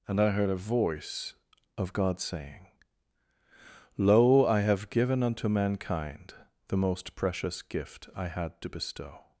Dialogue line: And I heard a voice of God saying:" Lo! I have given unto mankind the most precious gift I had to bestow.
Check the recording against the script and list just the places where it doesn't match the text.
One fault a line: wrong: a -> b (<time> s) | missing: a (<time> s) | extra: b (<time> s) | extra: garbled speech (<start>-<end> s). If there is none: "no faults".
no faults